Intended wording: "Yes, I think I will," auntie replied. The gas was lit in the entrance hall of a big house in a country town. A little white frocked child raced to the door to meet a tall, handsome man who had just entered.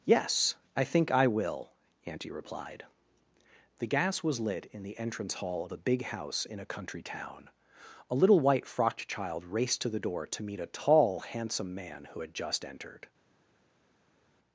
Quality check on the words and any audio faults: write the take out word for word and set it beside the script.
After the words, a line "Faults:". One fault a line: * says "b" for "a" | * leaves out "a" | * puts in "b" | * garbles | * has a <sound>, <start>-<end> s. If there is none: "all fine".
"Yes, I think I will," auntie replied. The gas was lit in the entrance hall of a big house in a country town. A little white frocked child raced to the door to meet a tall, handsome man who had just entered.
Faults:
all fine